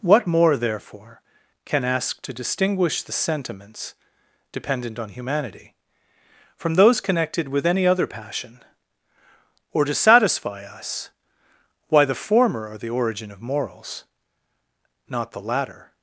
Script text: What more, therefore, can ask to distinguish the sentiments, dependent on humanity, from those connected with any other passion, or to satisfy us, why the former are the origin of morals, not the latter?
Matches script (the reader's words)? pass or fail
pass